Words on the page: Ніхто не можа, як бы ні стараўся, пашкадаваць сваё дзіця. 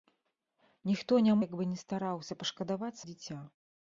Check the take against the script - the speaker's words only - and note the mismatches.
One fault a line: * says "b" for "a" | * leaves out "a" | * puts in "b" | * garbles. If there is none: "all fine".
* leaves out "можа"
* leaves out "сваё"